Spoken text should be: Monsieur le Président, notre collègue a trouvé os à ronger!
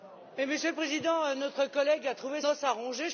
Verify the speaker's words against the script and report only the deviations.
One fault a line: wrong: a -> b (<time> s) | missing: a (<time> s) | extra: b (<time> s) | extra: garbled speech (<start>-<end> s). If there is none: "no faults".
no faults